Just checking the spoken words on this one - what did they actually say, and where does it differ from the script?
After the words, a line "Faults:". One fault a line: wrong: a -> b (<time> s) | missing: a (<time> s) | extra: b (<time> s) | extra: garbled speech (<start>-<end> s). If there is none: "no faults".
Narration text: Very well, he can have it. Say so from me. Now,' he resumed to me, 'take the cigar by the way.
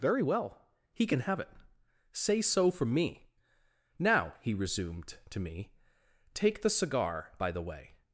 Very well, he can have it. Say so from me. Now,' he resumed to me, 'take the cigar by the way.
Faults:
no faults